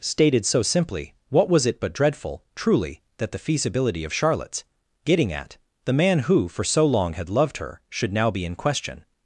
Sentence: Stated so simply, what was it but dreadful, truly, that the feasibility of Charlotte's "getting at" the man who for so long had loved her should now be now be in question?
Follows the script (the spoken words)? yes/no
no